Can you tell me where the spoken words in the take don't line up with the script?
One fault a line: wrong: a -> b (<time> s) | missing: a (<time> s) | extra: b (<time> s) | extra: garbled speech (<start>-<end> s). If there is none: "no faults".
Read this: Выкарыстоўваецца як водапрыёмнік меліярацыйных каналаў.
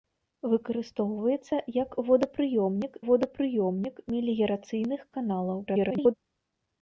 extra: водапрыёмнік (3.1 s)
extra: garbled speech (5.7-6.1 s)